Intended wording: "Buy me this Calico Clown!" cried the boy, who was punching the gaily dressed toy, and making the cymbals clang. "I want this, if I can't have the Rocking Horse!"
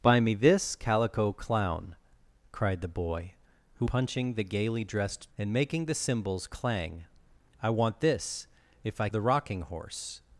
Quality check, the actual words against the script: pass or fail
fail